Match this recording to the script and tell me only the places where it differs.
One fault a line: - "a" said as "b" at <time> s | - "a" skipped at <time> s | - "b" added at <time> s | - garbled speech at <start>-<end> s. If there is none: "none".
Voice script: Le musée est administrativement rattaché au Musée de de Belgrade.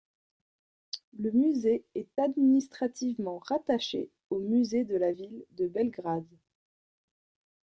- "la Ville" added at 4.9 s